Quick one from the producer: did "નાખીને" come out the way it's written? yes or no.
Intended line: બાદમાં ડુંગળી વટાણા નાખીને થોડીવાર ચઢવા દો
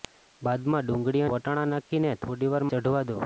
yes